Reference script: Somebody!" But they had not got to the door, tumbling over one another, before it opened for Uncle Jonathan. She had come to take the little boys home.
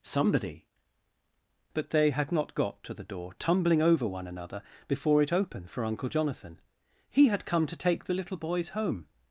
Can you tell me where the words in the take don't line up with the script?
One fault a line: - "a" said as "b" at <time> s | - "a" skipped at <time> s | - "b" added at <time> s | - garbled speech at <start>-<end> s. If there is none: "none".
- "She" said as "He" at 7.1 s